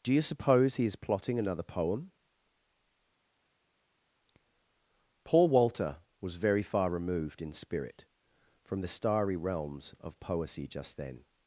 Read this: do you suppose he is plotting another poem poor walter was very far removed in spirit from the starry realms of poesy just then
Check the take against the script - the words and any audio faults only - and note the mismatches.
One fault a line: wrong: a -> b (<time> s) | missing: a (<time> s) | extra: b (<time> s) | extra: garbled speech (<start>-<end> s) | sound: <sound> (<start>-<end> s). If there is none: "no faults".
wrong: poor -> paul (5.2 s)